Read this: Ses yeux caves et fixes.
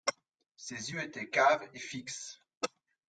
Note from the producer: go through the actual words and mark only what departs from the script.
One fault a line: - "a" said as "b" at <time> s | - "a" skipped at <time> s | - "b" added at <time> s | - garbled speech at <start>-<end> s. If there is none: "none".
- "étaient" added at 1.0 s